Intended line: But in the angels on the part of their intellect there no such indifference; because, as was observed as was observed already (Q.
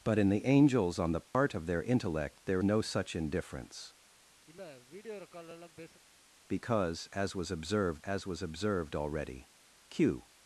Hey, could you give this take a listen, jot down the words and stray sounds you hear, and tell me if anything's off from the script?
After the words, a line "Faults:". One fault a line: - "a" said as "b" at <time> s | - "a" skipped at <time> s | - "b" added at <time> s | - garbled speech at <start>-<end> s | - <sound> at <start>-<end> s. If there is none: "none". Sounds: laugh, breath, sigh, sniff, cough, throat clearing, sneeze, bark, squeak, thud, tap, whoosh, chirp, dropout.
But in the angels on the part of their intellect there no such indifference; because, as was observed as was observed already (Q.
Faults:
- dropout at 1.3-1.3 s
- sniff at 4.5-6.0 s